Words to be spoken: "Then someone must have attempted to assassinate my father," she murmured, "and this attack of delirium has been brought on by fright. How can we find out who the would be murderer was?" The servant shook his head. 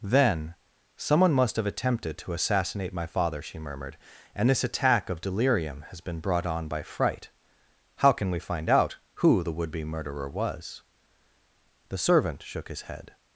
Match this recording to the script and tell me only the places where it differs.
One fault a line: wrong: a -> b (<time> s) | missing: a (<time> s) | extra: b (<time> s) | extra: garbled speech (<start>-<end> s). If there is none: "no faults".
no faults